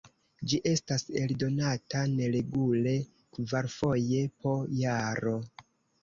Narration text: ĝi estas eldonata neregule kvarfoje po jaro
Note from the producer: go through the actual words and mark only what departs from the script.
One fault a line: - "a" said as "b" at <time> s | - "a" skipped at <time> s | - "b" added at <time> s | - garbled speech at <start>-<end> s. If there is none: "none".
none